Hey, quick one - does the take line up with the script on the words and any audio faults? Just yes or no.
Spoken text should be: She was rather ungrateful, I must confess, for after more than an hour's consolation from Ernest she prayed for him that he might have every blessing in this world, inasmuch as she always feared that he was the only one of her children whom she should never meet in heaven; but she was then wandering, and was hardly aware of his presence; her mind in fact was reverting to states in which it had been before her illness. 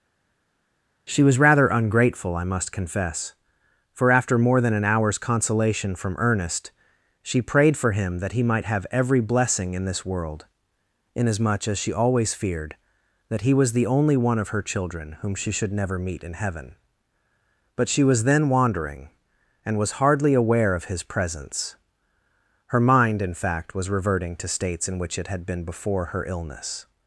yes